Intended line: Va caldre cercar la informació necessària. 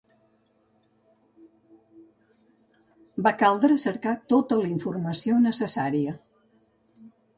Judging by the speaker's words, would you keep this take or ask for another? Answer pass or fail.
fail